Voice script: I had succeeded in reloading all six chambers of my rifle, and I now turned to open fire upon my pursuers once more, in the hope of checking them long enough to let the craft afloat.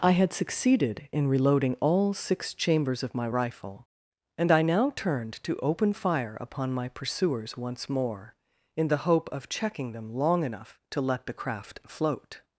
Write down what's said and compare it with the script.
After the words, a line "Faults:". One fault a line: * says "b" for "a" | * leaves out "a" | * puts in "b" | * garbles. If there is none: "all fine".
I had succeeded in reloading all six chambers of my rifle, and I now turned to open fire upon my pursuers once more, in the hope of checking them long enough to let the craft float.
Faults:
* says "float" for "afloat"